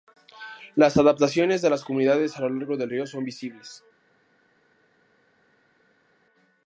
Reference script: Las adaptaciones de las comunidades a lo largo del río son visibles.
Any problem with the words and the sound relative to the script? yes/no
no